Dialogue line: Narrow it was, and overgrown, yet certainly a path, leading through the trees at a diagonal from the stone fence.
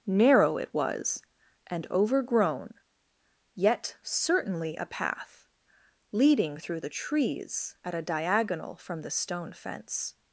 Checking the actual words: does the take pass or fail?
pass